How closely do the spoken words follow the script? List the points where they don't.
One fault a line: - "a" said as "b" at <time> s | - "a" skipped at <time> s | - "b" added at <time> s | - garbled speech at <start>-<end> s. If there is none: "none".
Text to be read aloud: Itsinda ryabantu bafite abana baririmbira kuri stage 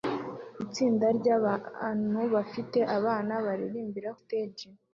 - "kuri" skipped at 4.1 s